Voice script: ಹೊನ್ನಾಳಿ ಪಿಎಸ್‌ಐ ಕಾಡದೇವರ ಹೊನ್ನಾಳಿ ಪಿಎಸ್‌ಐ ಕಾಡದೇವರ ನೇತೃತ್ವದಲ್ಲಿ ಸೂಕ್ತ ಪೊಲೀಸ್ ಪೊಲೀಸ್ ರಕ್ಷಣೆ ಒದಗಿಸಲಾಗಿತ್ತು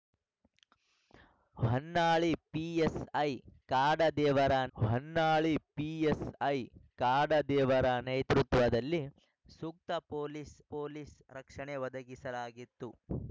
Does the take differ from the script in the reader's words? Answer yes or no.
no